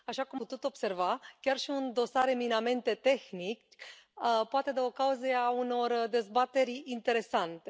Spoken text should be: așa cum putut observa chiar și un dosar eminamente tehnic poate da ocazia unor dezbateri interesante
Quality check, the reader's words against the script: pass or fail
pass